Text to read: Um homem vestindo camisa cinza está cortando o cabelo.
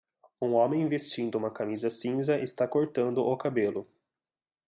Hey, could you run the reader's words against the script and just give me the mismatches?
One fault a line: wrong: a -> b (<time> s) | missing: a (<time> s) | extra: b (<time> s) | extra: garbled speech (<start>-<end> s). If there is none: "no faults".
extra: uma (1.4 s)